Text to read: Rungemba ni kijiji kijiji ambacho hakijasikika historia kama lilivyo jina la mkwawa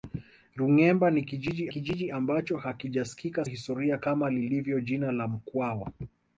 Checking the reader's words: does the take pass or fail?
pass